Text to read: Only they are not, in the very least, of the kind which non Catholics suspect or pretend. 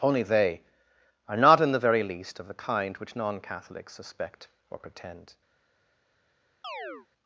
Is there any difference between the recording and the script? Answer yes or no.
no